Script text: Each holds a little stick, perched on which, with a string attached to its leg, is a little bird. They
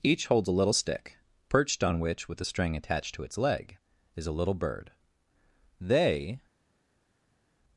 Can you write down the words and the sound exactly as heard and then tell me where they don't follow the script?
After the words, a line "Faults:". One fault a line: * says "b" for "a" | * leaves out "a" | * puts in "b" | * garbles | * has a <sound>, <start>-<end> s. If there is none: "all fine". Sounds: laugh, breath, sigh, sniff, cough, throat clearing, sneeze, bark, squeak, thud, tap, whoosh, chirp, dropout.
Each holds a little stick, perched on which, with a string attached to its leg, is a little bird. They
Faults:
all fine